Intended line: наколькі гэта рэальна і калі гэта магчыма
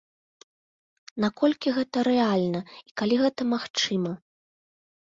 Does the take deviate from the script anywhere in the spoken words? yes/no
no